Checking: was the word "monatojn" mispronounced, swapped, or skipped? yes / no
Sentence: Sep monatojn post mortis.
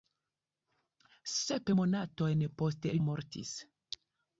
no